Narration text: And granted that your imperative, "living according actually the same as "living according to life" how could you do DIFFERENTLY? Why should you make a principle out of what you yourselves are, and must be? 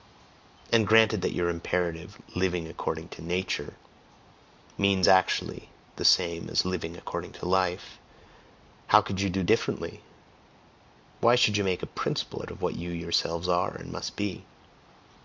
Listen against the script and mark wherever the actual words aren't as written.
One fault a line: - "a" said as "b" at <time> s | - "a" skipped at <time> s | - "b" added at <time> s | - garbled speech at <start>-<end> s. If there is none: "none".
- "to Nature means" added at 3.1 s